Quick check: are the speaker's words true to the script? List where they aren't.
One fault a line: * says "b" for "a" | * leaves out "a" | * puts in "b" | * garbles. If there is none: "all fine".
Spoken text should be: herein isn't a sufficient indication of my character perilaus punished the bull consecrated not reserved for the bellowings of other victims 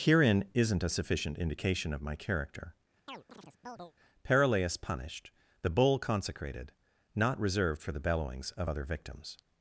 all fine